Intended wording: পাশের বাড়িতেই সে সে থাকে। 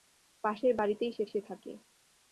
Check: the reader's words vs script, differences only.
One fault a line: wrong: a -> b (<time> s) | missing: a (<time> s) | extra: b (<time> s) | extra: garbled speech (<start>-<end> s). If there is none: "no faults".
no faults